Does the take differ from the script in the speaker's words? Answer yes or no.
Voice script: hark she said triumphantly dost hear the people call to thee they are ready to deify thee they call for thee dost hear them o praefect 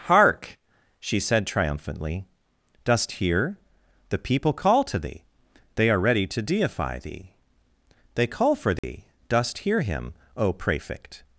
yes